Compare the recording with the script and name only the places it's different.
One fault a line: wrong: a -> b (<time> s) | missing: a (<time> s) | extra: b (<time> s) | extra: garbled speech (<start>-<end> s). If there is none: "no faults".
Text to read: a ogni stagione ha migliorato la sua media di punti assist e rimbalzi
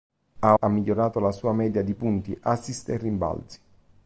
missing: ogni stagione (0.6 s)